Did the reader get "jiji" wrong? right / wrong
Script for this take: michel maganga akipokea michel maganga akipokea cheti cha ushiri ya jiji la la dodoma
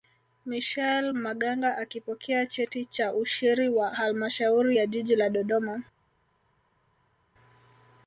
right